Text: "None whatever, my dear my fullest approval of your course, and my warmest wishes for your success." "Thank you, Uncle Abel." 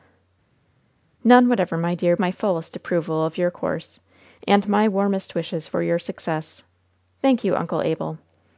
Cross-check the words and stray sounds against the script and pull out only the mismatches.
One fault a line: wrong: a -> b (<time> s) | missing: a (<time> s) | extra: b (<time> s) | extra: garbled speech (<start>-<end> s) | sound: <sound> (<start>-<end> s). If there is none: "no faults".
no faults